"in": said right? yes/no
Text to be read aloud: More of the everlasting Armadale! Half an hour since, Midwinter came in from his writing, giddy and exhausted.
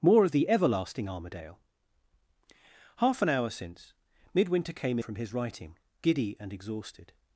no